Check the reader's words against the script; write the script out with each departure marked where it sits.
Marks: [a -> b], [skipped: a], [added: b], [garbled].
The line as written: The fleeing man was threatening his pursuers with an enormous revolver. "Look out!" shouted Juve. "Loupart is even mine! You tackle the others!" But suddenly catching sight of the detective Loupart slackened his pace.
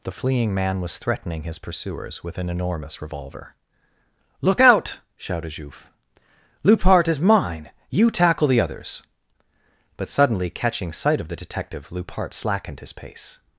The fleeing man was threatening his pursuers with an enormous revolver. "Look out!" shouted Juve. "Loupart is [skipped: even] mine! You tackle the others!" But suddenly catching sight of the detective Loupart slackened his pace.